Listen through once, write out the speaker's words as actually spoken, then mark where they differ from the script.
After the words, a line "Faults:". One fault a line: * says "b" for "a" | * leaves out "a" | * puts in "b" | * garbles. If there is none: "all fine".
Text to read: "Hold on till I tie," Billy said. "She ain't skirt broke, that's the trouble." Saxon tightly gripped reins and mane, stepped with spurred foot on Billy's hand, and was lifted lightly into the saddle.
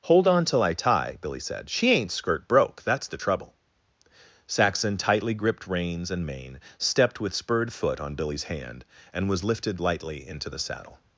"Hold on till I tie," Billy said. "She ain't skirt broke, that's the trouble." Saxon tightly gripped reins and mane, stepped with spurred foot on Billy's hand, and was lifted lightly into the saddle.
Faults:
all fine